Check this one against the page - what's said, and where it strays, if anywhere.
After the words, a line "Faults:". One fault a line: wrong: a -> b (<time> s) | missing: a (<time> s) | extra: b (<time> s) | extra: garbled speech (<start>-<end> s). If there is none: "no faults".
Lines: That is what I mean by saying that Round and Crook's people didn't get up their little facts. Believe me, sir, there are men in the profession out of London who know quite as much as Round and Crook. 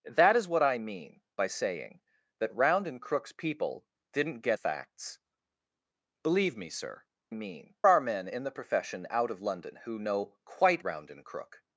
That is what I mean by saying that Round and Crook's people didn't get facts. Believe me, sir, mean are men in the profession out of London who know quite Round and Crook.
Faults:
missing: up their little (4.6 s)
wrong: there -> mean (7.3 s)
missing: as much as (10.8 s)